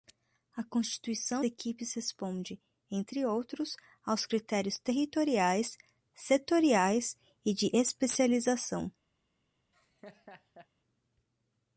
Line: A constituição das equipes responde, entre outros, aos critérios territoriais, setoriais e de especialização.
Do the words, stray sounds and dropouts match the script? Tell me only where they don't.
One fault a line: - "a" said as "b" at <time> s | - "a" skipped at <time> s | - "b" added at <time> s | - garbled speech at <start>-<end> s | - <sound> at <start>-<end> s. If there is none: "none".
- "das" skipped at 1.4 s
- laugh at 9.7-10.7 s